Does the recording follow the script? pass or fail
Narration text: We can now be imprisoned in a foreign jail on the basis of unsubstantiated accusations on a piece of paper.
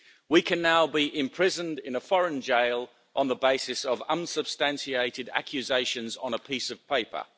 pass